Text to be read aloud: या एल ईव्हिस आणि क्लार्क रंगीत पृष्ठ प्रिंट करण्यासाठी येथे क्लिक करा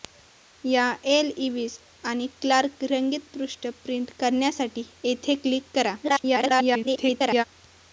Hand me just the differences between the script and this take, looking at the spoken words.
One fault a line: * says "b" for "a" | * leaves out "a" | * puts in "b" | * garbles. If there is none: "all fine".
* garbles